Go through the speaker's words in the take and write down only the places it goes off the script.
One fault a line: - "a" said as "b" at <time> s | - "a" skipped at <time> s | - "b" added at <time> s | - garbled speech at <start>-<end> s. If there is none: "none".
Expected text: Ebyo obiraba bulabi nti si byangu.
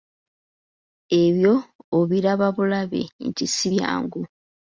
none